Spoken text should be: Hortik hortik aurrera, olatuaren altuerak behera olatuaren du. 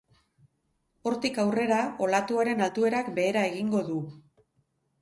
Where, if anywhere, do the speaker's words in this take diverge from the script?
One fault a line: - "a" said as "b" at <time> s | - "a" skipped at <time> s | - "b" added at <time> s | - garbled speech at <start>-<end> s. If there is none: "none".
- "hortik" skipped at 1.4 s
- "olatuaren" said as "egingo" at 3.5 s